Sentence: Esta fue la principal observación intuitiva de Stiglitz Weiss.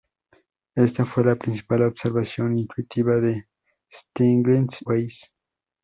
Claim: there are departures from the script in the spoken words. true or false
false